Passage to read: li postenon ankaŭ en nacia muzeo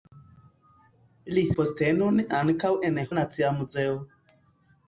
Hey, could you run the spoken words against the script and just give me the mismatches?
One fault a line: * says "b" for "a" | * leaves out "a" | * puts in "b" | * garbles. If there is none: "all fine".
all fine